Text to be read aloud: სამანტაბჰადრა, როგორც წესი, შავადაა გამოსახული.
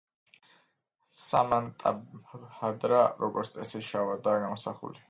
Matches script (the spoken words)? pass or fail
pass